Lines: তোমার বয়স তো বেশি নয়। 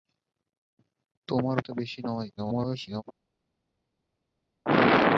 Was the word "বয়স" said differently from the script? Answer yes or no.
yes